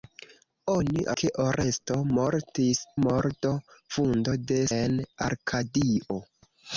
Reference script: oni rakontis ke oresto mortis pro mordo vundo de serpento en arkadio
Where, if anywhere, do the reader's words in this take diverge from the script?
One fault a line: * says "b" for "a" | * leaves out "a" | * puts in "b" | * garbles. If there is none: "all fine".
* leaves out "rakontis"
* leaves out "pro"
* leaves out "serpento"